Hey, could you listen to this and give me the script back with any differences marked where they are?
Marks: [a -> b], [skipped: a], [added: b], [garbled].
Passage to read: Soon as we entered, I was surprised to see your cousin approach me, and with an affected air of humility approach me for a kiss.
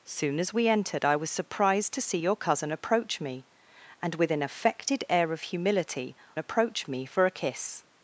Soon as we entered, I was surprised to see your cousin approach me, and with an affected air of humility approach me for a kiss.